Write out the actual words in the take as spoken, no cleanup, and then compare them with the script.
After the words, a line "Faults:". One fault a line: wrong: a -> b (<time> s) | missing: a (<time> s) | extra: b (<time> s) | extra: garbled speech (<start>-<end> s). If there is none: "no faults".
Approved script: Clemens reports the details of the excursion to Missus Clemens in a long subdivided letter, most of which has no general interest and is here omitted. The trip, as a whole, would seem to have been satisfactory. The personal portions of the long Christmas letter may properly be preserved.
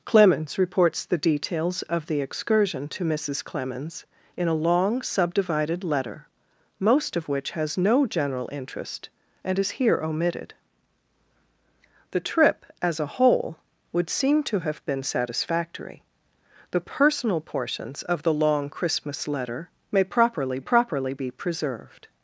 Clemens reports the details of the excursion to Missus Clemens in a long subdivided letter, most of which has no general interest and is here omitted. The trip, as a whole, would seem to have been satisfactory. The personal portions of the long Christmas letter may properly properly be preserved.
Faults:
extra: properly (20.6 s)